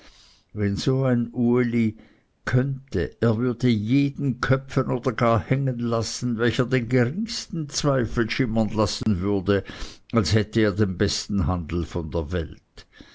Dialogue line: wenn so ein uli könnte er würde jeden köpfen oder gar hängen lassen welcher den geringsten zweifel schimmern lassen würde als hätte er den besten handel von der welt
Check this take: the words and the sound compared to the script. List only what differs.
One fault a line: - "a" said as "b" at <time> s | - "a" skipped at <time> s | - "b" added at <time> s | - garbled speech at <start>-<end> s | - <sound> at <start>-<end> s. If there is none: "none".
- dropout at 9.0-9.1 s